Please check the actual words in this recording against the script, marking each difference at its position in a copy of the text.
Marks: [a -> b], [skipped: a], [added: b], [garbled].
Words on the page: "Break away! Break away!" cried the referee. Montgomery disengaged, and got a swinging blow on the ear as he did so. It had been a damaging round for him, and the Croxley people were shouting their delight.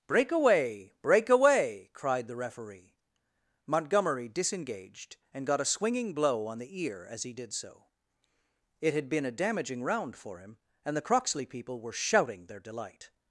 "Break away! Break away!" cried the referee. Montgomery disengaged, and got a swinging blow on the ear as he did so. It had been a damaging round for him, and the Croxley people were shouting their delight.